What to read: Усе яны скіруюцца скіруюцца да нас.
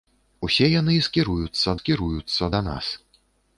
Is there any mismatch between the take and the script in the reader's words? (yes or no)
no